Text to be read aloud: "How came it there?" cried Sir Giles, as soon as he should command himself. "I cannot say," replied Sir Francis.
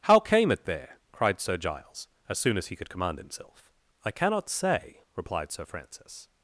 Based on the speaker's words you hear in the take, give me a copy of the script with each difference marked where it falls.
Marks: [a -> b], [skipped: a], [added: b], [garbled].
"How came it there?" cried Sir Giles, as soon as he [should -> could] command himself. "I cannot say," replied Sir Francis.